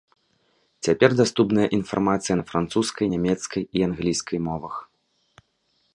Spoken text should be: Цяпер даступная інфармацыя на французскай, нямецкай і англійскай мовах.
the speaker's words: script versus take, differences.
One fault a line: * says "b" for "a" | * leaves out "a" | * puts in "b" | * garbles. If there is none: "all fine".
all fine